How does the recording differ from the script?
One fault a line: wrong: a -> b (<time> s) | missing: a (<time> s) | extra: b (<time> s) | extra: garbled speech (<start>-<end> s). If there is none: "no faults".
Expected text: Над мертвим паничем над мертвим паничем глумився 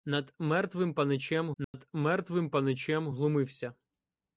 no faults